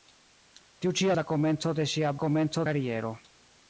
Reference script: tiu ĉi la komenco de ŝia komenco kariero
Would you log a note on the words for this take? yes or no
no